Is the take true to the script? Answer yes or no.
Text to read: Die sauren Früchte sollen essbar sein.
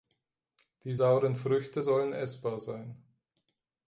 yes